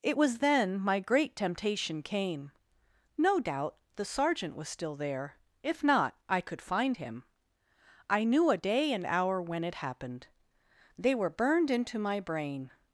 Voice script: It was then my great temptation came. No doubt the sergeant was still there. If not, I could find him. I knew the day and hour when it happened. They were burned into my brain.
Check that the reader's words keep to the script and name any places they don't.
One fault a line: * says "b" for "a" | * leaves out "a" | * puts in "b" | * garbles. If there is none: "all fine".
* says "a" for "the"